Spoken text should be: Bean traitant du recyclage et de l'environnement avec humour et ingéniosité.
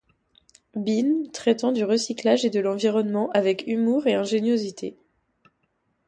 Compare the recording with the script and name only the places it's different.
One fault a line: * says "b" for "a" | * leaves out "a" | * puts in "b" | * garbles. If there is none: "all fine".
all fine